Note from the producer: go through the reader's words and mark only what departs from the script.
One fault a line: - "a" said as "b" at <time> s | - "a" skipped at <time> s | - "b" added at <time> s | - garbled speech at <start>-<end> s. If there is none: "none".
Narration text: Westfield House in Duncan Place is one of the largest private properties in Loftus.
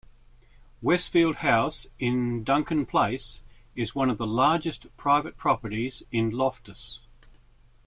none